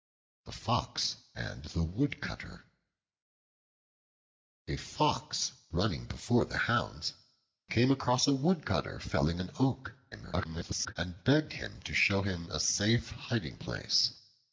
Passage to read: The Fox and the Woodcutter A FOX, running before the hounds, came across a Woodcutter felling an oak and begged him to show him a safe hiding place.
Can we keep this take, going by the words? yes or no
no